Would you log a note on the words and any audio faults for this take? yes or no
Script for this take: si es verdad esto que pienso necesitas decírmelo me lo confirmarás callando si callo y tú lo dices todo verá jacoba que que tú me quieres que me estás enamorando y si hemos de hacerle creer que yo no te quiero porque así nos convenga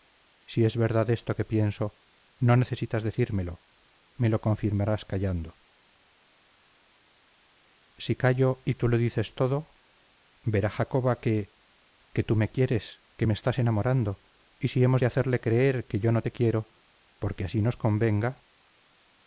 yes